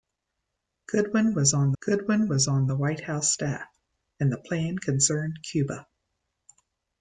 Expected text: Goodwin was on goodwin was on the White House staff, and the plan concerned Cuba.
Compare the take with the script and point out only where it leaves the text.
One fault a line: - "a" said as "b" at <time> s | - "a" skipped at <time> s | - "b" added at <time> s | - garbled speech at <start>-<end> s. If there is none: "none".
none